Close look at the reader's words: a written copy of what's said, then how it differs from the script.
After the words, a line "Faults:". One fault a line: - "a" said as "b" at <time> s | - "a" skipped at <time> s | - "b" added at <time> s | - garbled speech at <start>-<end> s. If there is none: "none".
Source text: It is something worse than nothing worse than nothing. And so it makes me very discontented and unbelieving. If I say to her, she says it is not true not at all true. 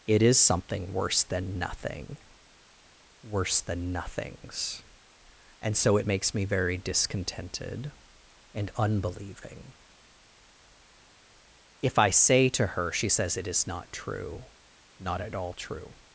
It is something worse than nothing worse than nothings. And so it makes me very discontented and unbelieving. If I say to her, she says it is not true not at all true.
Faults:
- "nothing" said as "nothings" at 3.9 s